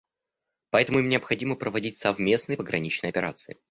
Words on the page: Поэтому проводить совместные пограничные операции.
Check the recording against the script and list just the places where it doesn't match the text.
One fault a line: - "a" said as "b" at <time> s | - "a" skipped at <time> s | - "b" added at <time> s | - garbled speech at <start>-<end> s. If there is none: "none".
- "им необходимо" added at 1.0 s